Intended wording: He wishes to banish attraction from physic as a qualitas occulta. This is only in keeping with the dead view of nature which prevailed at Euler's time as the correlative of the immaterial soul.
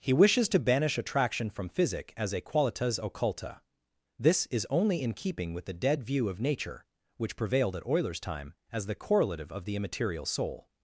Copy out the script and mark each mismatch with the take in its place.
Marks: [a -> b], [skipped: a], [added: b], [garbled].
He wishes to banish attraction from physic as a qualitas occulta. This is only in keeping with the dead view of nature which prevailed at Euler's time as the correlative of the immaterial soul.